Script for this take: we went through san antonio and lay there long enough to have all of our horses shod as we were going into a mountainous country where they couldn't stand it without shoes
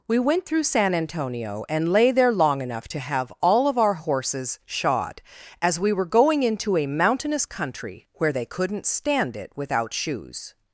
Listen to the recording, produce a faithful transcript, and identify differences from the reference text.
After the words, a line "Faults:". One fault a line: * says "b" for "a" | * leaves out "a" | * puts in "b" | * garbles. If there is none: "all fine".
we went through san antonio and lay there long enough to have all of our horses shod as we were going into a mountainous country where they couldn't stand it without shoes
Faults:
all fine